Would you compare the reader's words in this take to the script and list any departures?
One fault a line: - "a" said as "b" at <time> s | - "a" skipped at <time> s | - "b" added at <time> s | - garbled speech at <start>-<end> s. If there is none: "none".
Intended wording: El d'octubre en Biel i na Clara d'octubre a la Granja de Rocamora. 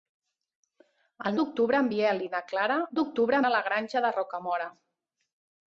none